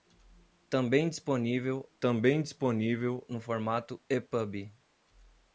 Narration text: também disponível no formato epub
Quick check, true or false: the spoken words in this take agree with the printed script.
false